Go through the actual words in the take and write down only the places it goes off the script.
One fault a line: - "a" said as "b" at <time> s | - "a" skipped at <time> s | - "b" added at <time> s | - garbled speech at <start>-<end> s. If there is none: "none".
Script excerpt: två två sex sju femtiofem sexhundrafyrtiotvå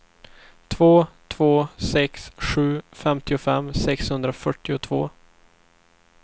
none